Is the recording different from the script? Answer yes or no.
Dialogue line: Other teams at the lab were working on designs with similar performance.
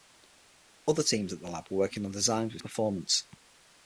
yes